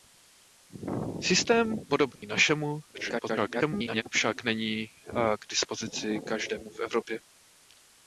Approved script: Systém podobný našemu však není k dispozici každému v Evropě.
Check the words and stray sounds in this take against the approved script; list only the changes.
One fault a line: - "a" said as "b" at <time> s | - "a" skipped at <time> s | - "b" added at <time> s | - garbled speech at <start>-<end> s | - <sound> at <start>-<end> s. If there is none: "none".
- dropout at 2.2-2.2 s
- garbled speech at 2.9-4.0 s